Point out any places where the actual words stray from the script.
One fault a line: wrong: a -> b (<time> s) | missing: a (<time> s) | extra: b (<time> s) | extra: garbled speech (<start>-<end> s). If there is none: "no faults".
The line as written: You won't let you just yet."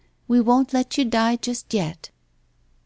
wrong: You -> We (0.3 s)
extra: die (1.1 s)